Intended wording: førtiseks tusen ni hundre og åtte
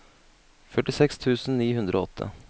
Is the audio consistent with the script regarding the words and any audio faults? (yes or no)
yes